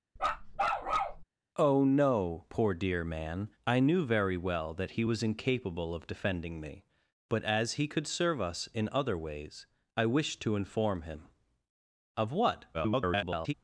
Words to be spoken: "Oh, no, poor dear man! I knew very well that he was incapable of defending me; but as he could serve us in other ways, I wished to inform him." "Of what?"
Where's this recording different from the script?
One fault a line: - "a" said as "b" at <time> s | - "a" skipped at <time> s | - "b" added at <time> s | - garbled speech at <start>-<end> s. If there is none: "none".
- garbled speech at 12.7-13.5 s